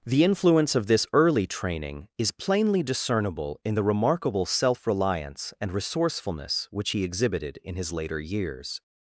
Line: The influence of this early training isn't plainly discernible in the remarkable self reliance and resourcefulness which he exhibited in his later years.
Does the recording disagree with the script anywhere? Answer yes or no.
yes